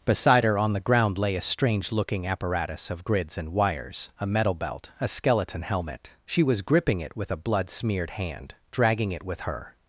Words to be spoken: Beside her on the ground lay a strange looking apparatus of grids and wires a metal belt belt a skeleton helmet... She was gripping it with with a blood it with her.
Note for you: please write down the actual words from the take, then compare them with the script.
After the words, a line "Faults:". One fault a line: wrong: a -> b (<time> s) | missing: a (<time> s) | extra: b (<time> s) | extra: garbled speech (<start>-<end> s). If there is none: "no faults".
Beside her on the ground lay a strange looking apparatus of grids and wires a metal belt a skeleton helmet... She was gripping it with a blood smeared hand, dragging it with her.
Faults:
missing: belt (4.9 s)
missing: with (7.3 s)
extra: smeared hand dragging (7.7 s)